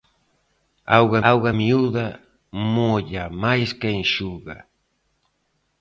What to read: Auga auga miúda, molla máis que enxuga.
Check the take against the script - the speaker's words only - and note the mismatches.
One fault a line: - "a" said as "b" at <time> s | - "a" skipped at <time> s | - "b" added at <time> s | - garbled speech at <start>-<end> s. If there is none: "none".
none